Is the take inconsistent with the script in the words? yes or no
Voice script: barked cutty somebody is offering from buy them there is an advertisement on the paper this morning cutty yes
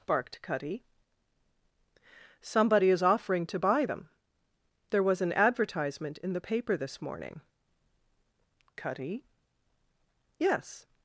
yes